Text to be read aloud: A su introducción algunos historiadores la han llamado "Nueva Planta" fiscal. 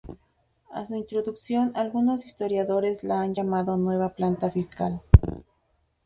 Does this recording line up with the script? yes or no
yes